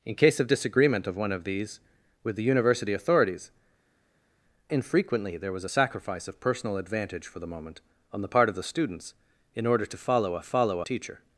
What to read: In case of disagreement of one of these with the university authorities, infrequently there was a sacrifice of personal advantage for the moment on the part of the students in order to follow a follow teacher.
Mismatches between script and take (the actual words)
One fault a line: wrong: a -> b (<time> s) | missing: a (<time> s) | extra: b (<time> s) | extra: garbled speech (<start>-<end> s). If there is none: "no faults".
no faults